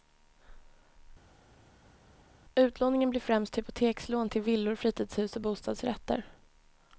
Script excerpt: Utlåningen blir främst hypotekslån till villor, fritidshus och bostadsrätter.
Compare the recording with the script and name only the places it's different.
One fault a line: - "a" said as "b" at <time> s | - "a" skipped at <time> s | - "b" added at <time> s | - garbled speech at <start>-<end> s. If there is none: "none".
none